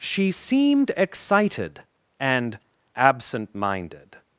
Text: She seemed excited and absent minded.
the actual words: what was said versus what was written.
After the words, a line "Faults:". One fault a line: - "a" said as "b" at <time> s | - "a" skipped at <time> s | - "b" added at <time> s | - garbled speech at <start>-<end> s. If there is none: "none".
She seemed excited and absent minded.
Faults:
none